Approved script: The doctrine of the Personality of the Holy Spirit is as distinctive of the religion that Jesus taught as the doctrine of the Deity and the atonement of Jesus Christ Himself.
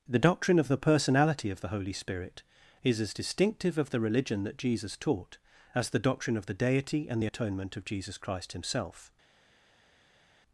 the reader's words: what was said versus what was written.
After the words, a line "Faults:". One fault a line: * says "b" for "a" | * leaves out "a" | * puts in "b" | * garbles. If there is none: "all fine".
The doctrine of the Personality of the Holy Spirit is as distinctive of the religion that Jesus taught as the doctrine of the Deity and the atonement of Jesus Christ Himself.
Faults:
all fine